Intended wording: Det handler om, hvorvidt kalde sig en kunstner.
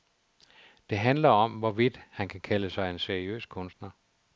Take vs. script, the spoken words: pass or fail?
fail